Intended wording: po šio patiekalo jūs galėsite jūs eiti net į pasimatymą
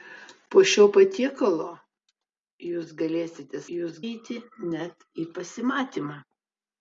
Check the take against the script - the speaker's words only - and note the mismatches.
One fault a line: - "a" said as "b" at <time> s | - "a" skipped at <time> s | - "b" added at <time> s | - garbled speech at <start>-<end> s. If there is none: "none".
none